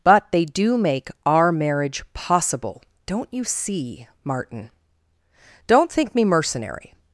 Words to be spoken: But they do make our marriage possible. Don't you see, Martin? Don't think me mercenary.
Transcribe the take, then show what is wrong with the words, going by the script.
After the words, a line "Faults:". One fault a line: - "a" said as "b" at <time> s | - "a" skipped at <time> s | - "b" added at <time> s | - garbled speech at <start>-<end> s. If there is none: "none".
But they do make our marriage possible. Don't you see, Martin? Don't think me mercenary.
Faults:
none